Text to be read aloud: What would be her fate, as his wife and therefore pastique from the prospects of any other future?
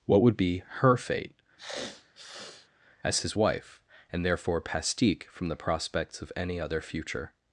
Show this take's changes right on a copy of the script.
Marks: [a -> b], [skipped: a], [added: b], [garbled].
What would be her fate, as his wife and therefore pastique from the prospects of any other future?